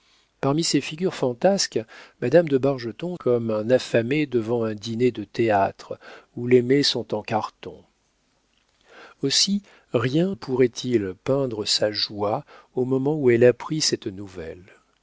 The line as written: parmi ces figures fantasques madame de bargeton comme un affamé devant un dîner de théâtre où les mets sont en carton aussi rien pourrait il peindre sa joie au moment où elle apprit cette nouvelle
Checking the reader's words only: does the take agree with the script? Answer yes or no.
yes